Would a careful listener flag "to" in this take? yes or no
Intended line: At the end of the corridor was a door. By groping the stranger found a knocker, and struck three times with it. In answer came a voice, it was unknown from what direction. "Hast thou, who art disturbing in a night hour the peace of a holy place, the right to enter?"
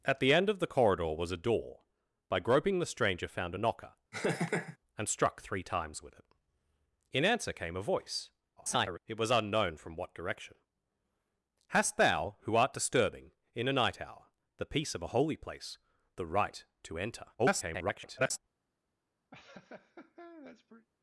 no